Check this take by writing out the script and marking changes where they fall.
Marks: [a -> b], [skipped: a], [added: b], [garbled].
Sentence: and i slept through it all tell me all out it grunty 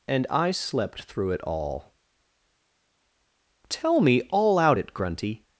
and i slept through it all tell me all out it grunty